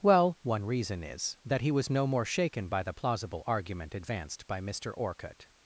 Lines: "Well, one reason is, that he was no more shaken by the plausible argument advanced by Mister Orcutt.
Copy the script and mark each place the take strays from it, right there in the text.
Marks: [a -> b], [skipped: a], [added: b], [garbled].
"Well, one reason is, that he was no more shaken by the plausible argument advanced by Mister Orcutt.